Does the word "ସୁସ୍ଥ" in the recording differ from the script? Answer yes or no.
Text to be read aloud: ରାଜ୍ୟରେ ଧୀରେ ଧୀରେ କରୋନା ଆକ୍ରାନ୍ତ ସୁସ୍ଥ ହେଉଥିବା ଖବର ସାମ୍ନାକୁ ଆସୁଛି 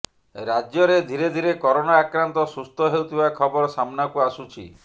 no